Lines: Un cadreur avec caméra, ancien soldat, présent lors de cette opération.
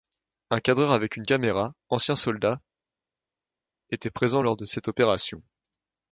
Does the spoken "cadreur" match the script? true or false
true